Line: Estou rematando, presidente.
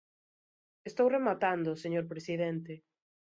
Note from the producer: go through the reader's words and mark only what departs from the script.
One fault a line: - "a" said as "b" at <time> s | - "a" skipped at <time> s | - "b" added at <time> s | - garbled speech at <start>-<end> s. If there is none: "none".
- "señor" added at 1.8 s